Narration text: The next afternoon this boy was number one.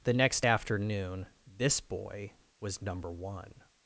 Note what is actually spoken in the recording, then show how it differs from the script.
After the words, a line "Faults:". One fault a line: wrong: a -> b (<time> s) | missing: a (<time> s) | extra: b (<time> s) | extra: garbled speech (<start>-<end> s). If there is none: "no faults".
The next afternoon this boy was number one.
Faults:
no faults